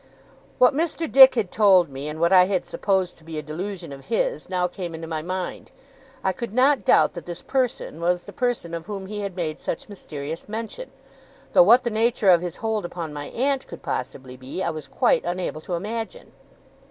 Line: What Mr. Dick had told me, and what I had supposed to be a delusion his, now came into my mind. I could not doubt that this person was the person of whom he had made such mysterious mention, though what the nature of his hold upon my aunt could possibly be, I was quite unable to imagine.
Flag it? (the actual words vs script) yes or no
yes